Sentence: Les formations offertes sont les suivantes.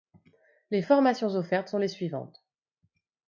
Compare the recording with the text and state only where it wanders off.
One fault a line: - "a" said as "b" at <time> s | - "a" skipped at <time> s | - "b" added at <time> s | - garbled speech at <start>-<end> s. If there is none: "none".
none